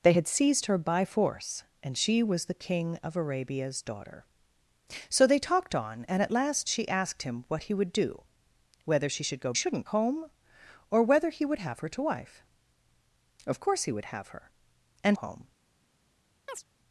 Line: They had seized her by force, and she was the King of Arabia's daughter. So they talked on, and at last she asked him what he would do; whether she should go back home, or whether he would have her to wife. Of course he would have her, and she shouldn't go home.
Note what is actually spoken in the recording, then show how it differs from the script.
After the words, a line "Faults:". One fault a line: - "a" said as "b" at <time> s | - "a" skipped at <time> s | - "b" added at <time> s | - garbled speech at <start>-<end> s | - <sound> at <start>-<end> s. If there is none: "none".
They had seized her by force, and she was the King of Arabia's daughter. So they talked on, and at last she asked him what he would do; whether she should go shouldn't home, or whether he would have her to wife. Of course he would have her, and home.
Faults:
- "back" said as "shouldn't" at 9.5 s
- "she shouldn't go" skipped at 15.2 s
- chirp at 16.5-16.6 s